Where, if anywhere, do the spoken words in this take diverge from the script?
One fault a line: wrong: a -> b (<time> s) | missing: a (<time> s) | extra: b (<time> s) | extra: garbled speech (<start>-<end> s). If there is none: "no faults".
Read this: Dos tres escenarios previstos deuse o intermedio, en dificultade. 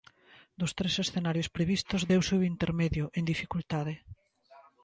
no faults